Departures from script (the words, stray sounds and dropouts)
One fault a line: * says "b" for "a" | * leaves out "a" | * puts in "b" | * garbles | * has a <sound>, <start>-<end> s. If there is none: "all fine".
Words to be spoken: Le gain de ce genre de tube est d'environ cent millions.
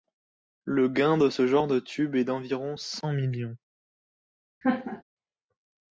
* has a laugh, 4.6-5.0 s